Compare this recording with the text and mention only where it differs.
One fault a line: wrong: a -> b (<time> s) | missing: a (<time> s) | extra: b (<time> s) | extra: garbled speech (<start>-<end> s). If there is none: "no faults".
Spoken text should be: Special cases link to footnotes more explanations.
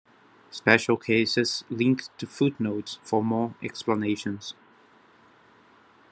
extra: for (3.0 s)